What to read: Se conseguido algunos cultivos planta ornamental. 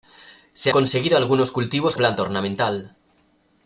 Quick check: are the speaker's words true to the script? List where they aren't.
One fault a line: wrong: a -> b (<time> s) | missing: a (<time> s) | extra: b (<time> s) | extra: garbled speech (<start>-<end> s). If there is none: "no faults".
no faults